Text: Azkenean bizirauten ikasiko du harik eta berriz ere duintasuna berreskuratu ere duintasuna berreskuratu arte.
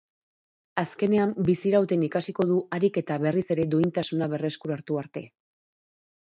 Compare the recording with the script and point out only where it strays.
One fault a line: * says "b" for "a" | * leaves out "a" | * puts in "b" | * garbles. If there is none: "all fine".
* leaves out "ere duintasuna berreskuratu"